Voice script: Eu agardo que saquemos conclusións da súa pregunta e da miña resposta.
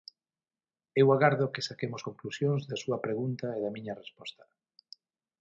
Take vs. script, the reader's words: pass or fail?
pass